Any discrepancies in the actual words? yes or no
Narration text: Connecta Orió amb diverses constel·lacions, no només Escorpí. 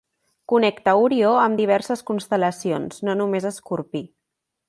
no